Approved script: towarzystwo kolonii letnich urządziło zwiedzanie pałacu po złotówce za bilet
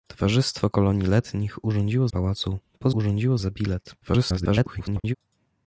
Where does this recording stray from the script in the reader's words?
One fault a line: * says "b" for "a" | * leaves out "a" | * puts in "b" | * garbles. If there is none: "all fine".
* leaves out "zwiedzanie"
* says "urządziło" for "złotówce"
* garbles